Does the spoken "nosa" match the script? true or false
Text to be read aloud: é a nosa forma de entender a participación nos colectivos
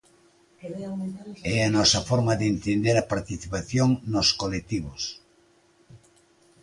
true